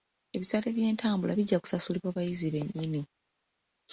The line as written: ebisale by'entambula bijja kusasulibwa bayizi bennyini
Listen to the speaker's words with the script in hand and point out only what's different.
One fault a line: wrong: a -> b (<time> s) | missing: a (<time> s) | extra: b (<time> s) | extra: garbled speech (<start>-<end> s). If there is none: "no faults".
no faults